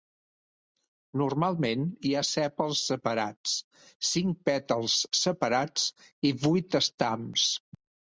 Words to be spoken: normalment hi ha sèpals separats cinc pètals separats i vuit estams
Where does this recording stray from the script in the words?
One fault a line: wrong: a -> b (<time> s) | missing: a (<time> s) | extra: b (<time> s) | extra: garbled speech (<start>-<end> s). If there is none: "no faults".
no faults